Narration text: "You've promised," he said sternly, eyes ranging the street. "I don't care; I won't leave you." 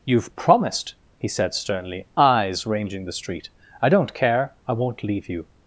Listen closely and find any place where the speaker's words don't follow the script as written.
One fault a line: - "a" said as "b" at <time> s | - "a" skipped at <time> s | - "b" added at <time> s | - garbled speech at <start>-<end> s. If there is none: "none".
none